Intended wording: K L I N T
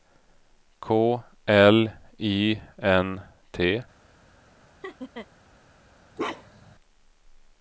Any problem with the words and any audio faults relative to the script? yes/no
yes